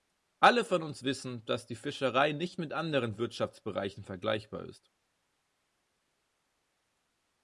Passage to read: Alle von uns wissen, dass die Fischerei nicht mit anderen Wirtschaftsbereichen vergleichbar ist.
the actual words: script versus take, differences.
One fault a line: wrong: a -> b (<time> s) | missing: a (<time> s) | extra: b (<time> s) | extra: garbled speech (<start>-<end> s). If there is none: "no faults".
no faults